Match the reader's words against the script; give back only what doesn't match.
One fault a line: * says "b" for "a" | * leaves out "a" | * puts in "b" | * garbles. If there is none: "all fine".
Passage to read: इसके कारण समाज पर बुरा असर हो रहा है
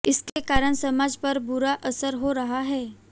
all fine